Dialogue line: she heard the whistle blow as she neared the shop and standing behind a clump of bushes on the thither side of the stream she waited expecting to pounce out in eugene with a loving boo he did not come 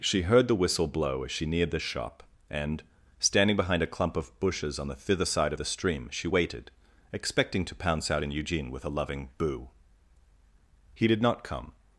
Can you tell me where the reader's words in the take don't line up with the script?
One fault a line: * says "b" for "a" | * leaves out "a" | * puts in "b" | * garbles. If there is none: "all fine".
all fine